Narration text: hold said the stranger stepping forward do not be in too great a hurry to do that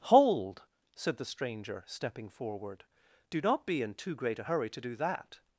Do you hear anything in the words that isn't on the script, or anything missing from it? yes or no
no